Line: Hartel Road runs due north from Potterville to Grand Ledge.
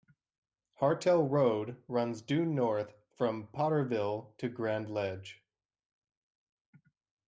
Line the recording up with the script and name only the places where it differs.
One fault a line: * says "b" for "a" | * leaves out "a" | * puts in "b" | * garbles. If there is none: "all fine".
all fine